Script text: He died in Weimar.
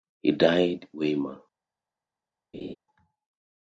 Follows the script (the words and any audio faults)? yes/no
no